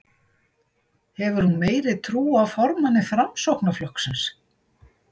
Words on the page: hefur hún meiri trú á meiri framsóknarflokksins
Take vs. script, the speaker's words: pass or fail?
fail